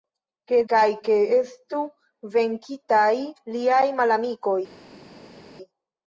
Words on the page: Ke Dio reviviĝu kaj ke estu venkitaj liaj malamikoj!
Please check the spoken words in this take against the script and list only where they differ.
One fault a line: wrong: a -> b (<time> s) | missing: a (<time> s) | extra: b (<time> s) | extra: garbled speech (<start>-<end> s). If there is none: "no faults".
missing: Dio reviviĝu (0.6 s)